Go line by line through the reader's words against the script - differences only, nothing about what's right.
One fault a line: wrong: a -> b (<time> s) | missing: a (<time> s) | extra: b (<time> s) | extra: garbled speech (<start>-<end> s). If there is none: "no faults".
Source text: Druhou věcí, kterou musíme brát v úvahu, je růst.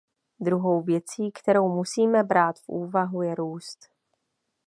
no faults